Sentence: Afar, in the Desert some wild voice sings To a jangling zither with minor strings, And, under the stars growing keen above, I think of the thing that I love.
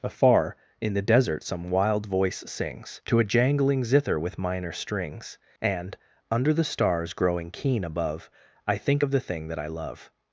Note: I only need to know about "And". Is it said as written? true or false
true